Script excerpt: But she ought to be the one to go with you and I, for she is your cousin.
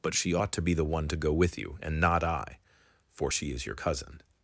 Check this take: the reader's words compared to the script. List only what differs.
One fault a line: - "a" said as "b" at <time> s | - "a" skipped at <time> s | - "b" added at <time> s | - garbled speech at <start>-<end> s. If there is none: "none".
- "not" added at 2.0 s